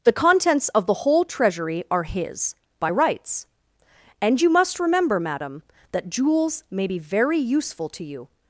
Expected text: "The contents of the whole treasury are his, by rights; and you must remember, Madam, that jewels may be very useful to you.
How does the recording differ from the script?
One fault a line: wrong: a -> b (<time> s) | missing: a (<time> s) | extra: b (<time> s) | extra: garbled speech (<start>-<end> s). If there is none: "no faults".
no faults